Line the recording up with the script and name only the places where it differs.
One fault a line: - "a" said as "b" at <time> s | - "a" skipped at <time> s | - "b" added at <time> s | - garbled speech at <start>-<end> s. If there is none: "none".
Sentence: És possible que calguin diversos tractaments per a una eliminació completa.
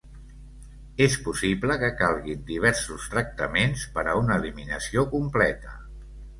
none